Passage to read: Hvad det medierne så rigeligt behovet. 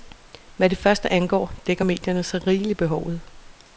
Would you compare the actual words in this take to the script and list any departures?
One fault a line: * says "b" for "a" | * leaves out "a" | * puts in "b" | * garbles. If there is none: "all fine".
* puts in "første angår dækker"